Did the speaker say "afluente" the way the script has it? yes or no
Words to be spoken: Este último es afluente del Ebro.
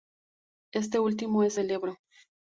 no